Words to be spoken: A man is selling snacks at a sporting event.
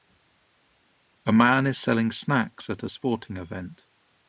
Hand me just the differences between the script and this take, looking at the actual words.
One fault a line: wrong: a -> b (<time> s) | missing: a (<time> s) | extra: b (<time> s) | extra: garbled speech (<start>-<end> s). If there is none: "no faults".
no faults